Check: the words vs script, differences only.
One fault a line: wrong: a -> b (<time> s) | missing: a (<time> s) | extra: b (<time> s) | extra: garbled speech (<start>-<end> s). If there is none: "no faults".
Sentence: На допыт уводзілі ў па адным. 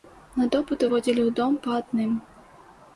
extra: дом (1.4 s)